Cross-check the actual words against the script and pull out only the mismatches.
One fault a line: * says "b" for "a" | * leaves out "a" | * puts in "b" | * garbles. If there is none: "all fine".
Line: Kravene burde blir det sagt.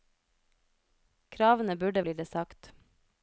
all fine